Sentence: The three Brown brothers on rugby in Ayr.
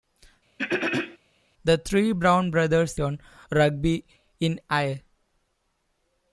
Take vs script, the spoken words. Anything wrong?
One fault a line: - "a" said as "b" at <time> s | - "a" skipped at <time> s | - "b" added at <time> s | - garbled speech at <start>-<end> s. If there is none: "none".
none